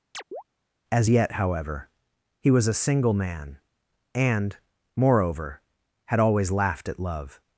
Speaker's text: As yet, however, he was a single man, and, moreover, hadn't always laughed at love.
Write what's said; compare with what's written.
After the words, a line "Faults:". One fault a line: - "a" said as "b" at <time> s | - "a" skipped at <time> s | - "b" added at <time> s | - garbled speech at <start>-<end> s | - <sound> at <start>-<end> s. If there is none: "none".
As yet, however, he was a single man, and, moreover, had always laughed at love.
Faults:
- chirp at 0.1-0.4 s
- "hadn't" said as "had" at 6.1 s